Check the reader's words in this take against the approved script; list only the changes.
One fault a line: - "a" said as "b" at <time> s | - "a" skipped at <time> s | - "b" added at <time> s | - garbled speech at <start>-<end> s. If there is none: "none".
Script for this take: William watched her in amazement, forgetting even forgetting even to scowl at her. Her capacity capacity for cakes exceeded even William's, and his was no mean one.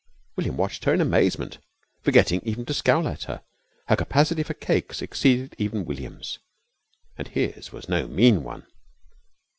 - "forgetting even" skipped at 2.6 s
- "capacity" skipped at 4.4 s